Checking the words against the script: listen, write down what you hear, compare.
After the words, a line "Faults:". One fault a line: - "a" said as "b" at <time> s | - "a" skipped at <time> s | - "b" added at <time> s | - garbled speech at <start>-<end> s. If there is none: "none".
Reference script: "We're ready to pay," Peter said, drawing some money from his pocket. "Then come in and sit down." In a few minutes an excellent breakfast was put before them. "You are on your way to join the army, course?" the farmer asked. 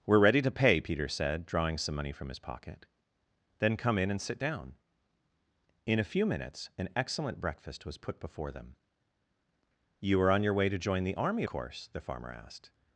"We're ready to pay," Peter said, drawing some money from his pocket. "Then come in and sit down." In a few minutes an excellent breakfast was put before them. "You are on your way to join the army, course?" the farmer asked.
Faults:
none